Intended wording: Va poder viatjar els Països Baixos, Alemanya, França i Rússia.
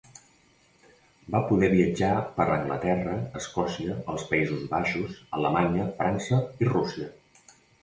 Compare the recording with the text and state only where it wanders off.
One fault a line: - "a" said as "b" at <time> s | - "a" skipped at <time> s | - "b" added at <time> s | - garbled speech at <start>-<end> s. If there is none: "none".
- "per Anglaterra Escòcia" added at 2.4 s